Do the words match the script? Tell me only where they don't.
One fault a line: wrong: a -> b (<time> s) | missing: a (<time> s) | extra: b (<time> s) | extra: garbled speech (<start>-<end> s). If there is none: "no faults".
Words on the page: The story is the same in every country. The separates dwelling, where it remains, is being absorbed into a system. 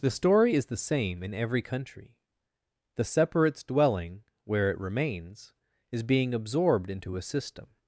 no faults